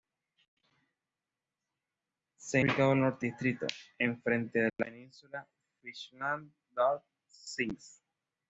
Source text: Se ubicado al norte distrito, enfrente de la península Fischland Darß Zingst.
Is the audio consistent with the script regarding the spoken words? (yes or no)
yes